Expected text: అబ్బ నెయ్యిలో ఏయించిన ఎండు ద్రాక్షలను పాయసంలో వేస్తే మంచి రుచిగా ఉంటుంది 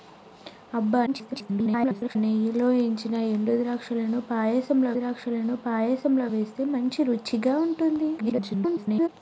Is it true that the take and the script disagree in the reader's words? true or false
true